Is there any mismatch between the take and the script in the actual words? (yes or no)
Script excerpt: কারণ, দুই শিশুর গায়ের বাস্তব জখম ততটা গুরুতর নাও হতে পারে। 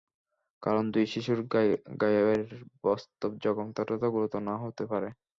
no